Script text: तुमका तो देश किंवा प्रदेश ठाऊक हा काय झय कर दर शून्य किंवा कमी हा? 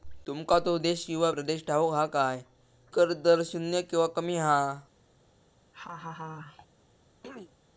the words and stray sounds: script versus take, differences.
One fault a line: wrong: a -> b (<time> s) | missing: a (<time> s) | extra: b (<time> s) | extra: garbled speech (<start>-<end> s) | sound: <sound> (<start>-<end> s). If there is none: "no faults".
missing: झय (2.4 s)
sound: laugh (5.7-6.7 s)
sound: throat clearing (7.2-7.5 s)